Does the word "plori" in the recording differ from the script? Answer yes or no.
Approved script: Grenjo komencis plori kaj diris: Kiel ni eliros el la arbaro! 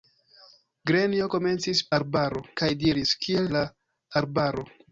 yes